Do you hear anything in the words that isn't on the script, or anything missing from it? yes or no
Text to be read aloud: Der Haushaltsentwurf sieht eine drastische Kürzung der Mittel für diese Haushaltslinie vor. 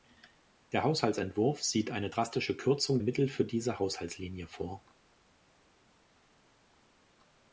yes